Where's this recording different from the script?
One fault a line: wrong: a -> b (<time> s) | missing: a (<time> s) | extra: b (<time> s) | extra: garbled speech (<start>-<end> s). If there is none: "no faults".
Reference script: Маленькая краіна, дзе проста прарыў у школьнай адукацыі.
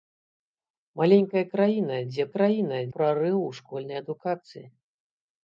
wrong: проста -> краіна (2.3 s)